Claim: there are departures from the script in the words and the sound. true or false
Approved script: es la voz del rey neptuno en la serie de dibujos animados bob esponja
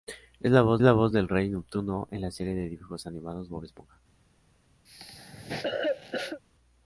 true